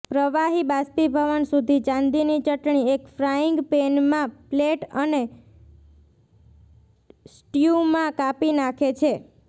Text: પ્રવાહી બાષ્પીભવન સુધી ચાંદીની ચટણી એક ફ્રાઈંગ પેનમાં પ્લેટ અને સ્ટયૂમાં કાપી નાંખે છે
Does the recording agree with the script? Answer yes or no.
yes